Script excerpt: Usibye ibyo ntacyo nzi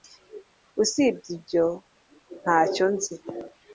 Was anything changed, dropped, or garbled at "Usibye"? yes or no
no